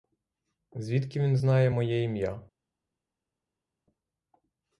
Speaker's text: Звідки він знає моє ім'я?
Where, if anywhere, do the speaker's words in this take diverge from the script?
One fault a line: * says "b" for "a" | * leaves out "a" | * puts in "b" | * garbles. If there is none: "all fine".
all fine